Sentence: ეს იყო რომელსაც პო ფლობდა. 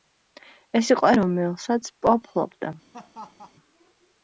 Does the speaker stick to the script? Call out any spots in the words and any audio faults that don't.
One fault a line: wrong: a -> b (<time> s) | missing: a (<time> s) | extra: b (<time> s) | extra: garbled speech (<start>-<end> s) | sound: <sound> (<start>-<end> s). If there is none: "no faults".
sound: laugh (2.9-3.5 s)